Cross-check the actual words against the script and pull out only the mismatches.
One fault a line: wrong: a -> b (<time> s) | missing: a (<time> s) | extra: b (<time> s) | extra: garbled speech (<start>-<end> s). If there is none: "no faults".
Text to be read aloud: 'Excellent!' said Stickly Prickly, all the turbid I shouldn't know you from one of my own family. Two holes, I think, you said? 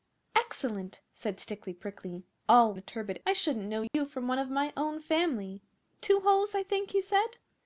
no faults